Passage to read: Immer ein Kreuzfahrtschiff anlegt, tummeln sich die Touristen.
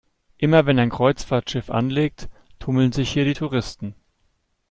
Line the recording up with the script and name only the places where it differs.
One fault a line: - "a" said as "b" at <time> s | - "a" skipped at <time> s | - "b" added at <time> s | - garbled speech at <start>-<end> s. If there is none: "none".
- "wenn" added at 0.7 s
- "hier" added at 3.1 s